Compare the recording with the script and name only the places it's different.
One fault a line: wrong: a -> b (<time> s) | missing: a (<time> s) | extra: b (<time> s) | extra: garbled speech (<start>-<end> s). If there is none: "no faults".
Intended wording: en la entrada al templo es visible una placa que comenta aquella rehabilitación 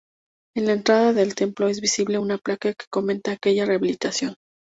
wrong: al -> del (1.1 s)